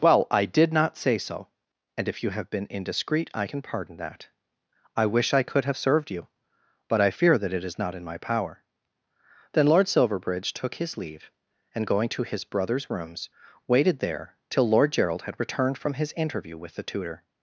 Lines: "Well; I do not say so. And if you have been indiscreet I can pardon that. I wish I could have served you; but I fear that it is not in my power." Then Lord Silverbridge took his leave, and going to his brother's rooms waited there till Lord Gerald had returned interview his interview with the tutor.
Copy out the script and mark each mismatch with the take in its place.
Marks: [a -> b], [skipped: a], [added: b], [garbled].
"Well; I [do -> did] not say so. And if you have been indiscreet I can pardon that. I wish I could have served you; but I fear that it is not in my power." Then Lord Silverbridge took his leave, and going to his brother's rooms waited there till Lord Gerald had returned [interview -> from] his interview with the tutor.